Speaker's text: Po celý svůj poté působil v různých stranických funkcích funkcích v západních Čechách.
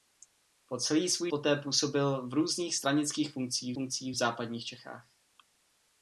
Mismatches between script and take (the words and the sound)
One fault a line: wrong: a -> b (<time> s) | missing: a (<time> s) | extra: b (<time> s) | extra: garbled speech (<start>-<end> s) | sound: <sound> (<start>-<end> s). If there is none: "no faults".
no faults